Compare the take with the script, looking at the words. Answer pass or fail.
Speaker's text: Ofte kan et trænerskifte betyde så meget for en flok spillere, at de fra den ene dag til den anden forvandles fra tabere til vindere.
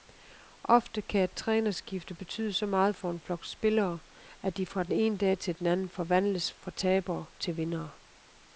pass